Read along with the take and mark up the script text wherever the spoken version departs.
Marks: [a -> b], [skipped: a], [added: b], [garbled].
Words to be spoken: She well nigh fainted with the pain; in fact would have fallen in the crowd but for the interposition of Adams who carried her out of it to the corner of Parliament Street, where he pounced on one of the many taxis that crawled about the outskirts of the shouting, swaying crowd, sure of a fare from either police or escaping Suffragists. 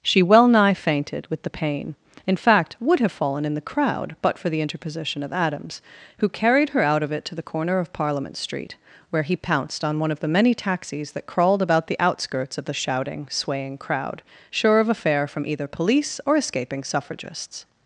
She well nigh fainted with the pain; in fact would have fallen in the crowd but for the interposition of Adams who carried her out of it to the corner of Parliament Street, where he pounced on one of the many taxis that crawled about the outskirts of the shouting, swaying crowd, sure of a fare from either police or escaping Suffragists.